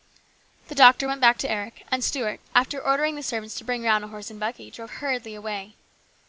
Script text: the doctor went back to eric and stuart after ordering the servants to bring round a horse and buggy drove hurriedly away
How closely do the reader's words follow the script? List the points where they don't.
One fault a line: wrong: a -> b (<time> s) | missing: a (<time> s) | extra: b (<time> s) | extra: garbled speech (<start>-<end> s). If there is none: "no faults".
no faults